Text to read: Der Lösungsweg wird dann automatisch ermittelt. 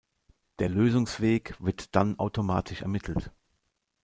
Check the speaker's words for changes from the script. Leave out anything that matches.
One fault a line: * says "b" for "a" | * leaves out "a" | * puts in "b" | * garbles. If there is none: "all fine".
all fine